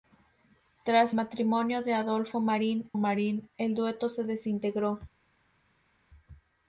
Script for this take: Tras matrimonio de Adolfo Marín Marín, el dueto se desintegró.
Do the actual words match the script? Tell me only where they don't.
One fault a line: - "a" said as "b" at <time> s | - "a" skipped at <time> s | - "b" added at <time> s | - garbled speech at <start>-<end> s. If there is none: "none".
none